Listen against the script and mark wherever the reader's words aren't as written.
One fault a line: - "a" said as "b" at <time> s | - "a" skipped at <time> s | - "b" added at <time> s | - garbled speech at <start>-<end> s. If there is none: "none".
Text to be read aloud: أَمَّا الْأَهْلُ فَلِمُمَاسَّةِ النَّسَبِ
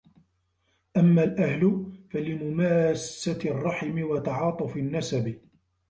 - "الرَّحِمِ وَتَعَاطُفِ" added at 3.4 s